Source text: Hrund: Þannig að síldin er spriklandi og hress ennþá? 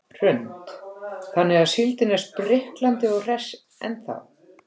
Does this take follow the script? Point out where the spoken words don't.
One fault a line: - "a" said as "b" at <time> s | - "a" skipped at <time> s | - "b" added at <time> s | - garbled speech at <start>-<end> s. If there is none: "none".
none